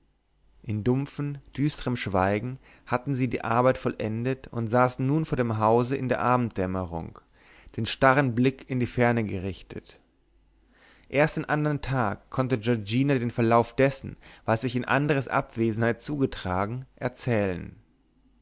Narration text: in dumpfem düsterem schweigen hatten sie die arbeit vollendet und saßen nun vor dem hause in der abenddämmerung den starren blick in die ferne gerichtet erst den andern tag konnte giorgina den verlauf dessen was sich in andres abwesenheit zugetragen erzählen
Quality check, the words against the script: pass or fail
pass